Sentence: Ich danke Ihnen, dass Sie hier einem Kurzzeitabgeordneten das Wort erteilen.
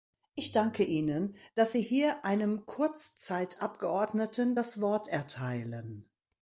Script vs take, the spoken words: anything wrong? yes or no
no